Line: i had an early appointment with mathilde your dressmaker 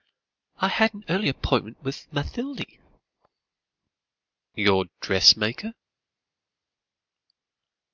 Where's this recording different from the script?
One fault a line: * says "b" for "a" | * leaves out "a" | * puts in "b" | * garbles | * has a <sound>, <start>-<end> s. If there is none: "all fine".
all fine